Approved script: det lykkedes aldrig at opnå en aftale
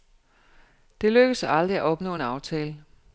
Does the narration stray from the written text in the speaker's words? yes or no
no